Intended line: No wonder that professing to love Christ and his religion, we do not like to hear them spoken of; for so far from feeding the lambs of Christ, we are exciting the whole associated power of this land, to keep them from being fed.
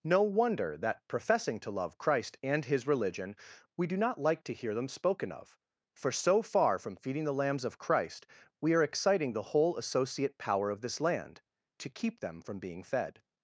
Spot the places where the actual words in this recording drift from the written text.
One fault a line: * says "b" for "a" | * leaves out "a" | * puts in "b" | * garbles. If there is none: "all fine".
* says "associate" for "associated"